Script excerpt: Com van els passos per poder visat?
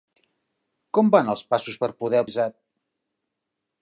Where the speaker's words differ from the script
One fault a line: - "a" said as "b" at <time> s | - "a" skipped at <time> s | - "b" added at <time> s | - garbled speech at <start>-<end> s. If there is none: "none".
none